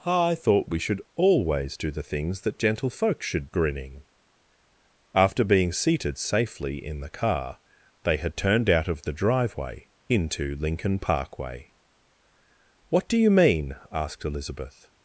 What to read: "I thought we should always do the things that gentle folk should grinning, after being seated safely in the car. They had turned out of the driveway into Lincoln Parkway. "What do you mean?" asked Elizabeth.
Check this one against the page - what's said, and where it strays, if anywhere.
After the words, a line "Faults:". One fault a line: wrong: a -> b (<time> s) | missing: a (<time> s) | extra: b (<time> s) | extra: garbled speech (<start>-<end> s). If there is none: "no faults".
"I thought we should always do the things that gentle folk should grinning, after being seated safely in the car. They had turned out of the driveway into Lincoln Parkway. "What do you mean?" asked Elizabeth.
Faults:
no faults